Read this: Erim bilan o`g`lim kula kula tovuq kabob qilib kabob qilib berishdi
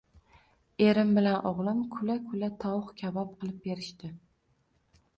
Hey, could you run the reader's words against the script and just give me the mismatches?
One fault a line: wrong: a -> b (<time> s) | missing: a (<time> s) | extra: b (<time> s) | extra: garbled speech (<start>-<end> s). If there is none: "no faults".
missing: kabob qilib (3.6 s)